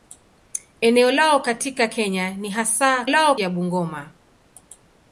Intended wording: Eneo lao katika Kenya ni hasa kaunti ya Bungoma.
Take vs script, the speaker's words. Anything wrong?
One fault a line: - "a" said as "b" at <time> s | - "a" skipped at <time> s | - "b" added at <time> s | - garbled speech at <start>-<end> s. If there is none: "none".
- "kaunti" said as "lao" at 3.1 s